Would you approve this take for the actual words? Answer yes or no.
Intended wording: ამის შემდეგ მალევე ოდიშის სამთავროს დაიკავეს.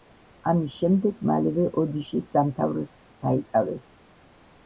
yes